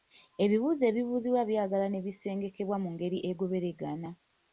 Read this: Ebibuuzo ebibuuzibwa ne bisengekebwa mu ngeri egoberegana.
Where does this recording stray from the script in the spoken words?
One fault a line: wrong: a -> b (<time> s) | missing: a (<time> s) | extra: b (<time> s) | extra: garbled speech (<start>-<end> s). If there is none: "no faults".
extra: byagala (1.5 s)